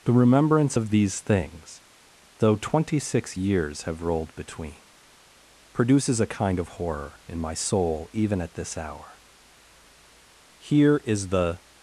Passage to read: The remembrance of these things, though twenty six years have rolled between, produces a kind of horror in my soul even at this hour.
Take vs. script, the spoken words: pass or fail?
fail